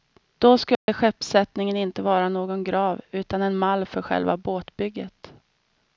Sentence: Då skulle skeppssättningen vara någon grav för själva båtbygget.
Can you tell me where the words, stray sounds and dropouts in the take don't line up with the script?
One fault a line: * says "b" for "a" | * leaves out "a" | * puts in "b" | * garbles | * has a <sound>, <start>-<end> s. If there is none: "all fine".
* has a dropout, 0.8-0.9 s
* puts in "inte"
* puts in "utan en mall"